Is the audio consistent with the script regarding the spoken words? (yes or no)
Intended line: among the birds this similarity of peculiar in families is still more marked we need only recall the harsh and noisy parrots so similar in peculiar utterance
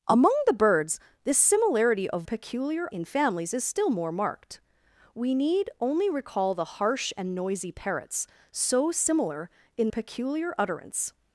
yes